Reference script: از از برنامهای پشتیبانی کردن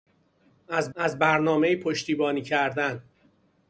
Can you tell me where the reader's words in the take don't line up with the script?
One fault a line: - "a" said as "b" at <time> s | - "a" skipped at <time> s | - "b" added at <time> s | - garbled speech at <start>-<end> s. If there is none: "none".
none